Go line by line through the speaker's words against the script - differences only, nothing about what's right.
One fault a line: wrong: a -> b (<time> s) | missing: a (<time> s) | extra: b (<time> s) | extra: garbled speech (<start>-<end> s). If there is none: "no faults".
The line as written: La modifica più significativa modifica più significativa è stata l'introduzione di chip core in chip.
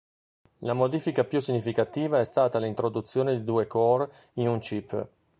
missing: modifica più significativa (2.2 s)
wrong: chip -> due (3.4 s)
extra: un (4.5 s)